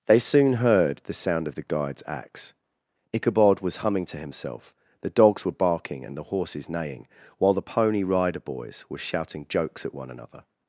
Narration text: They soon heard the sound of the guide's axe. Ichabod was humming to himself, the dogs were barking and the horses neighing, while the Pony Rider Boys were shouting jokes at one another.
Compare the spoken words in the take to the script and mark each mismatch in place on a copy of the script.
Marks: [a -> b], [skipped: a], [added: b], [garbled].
They soon heard the sound of the guide's axe. Ichabod was humming to himself, the dogs were barking and the horses neighing, while the Pony Rider Boys were shouting jokes at one another.